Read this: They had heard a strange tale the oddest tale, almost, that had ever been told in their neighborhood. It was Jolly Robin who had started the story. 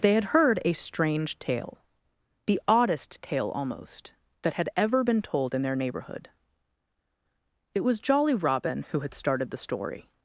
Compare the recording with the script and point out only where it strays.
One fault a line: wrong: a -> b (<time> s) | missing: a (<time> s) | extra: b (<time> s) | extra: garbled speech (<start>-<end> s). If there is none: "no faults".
no faults